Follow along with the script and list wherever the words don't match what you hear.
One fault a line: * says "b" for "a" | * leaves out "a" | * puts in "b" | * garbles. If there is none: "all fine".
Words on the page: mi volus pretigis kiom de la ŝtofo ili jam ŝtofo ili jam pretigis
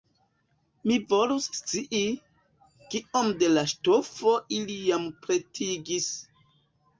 * says "scii" for "pretigis"
* leaves out "ŝtofo ili jam"